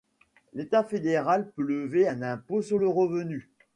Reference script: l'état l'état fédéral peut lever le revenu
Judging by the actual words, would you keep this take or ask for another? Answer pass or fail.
fail